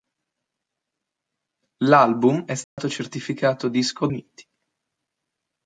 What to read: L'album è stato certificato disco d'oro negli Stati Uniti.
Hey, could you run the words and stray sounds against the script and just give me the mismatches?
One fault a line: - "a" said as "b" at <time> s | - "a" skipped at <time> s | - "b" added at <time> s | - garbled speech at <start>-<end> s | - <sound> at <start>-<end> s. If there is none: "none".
- dropout at 2.6-2.8 s
- "d'oro negli Stati" skipped at 4.1 s